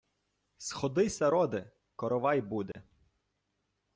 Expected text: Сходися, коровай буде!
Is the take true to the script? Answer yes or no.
no